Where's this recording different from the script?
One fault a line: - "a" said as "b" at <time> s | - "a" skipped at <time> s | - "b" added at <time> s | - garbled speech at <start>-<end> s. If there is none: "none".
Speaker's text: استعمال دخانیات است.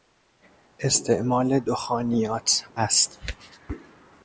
none